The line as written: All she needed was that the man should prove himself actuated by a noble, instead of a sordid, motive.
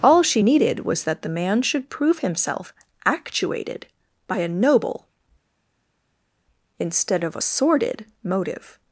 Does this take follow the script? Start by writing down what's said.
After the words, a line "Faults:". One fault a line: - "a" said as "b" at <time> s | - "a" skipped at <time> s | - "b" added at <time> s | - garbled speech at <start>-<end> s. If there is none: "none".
All she needed was that the man should prove himself actuated by a noble, instead of a sordid, motive.
Faults:
none